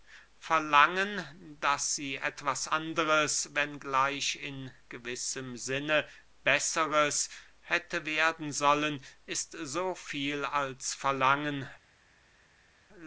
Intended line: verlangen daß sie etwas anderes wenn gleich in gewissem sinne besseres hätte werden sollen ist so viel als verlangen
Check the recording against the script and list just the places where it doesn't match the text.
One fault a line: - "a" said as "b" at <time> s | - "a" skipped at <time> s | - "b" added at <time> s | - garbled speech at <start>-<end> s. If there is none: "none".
none